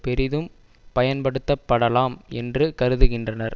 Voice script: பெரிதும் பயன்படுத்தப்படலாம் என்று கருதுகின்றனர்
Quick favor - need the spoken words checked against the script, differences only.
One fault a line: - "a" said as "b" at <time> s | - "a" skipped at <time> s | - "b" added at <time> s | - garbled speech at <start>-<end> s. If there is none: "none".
none